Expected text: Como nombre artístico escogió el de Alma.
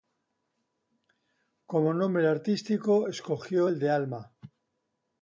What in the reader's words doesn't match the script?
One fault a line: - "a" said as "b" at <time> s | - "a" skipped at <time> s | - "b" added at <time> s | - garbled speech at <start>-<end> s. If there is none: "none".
none